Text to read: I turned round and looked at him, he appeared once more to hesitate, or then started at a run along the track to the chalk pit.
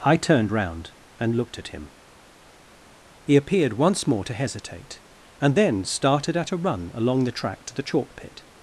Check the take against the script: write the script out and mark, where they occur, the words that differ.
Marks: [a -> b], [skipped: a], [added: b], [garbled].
I turned round and looked at him, he appeared once more to hesitate, [or -> and] then started at a run along the track to the chalk pit.